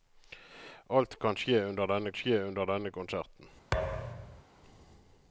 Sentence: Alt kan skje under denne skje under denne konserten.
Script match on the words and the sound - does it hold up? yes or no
no